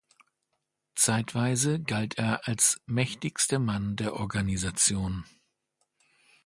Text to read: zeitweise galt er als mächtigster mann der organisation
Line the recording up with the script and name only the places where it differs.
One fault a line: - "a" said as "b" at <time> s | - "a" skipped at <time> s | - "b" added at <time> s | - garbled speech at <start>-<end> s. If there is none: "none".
none